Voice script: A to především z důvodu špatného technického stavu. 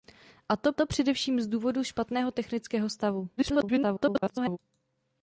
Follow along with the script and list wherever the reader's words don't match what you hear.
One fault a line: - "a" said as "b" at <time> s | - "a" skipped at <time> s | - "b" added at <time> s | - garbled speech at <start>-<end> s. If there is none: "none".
- "to" added at 0.7 s
- garbled speech at 3.4-4.6 s